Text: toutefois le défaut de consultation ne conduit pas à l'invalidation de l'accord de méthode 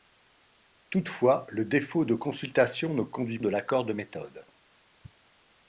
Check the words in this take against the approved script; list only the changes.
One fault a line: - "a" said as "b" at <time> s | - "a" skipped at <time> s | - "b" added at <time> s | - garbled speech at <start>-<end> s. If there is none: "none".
- "pas à l'invalidation" skipped at 3.4 s